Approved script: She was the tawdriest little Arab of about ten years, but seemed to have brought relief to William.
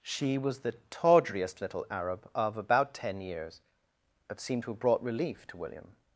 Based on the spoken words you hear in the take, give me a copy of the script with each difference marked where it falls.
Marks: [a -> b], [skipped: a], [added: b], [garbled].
She was the tawdriest little Arab of about ten years, but seemed to have brought relief to William.